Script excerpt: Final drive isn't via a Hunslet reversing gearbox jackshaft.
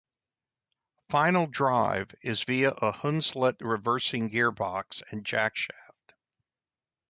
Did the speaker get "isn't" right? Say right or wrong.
wrong